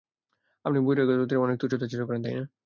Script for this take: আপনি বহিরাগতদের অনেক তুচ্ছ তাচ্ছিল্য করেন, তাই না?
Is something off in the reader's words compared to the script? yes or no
no